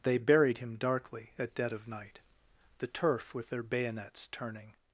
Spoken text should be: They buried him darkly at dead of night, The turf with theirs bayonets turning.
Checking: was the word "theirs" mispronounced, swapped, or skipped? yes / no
yes